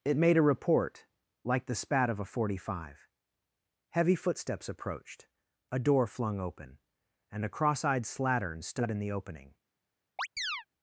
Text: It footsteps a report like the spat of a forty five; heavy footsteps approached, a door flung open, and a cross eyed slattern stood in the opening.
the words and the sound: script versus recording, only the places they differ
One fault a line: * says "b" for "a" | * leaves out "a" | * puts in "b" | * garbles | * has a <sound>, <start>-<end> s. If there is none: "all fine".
* says "made" for "footsteps"
* has a chirp, 10.2-10.7 s